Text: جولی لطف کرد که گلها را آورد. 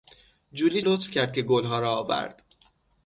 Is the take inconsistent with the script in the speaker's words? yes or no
no